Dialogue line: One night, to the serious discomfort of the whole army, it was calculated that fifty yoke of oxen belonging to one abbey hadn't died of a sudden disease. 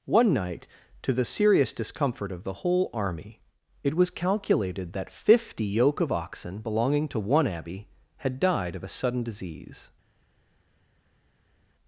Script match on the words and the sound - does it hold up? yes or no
no